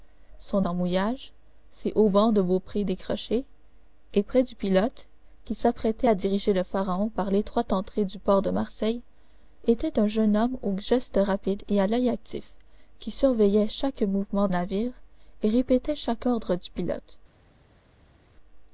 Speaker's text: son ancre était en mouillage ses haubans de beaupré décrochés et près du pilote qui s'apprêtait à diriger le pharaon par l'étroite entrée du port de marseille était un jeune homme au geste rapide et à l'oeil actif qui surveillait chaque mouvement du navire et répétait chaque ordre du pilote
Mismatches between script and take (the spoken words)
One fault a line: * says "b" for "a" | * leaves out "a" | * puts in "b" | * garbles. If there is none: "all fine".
* leaves out "ancre était"
* leaves out "du"